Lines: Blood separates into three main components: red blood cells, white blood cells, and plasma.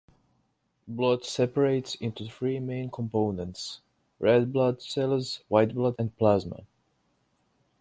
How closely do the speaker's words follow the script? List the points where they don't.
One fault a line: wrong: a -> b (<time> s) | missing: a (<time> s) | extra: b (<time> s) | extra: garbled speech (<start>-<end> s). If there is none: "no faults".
missing: cells (6.0 s)